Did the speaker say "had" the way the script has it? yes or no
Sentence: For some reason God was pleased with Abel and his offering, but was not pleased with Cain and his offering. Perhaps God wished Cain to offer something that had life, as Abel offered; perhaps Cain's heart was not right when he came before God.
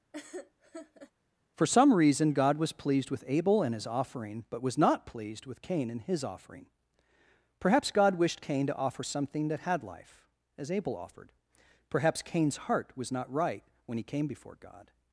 yes